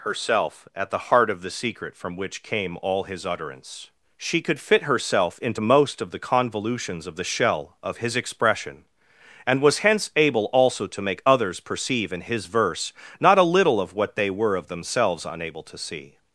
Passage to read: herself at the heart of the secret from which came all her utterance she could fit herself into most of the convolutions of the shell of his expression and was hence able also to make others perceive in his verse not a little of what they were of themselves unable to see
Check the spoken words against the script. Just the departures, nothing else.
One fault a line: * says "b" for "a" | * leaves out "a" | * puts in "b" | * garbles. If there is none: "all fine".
* says "his" for "her"